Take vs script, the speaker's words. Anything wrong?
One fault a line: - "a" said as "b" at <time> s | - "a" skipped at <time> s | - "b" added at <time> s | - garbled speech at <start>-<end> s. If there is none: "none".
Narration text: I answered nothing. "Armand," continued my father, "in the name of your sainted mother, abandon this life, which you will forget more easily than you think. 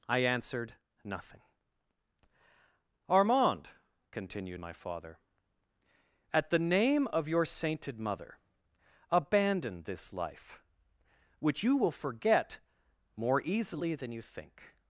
- "in" said as "at" at 6.3 s